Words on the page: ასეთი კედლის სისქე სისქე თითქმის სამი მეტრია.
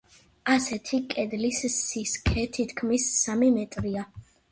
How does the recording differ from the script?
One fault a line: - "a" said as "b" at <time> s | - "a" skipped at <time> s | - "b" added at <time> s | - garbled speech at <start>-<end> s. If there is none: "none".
- "სისქე" skipped at 2.4 s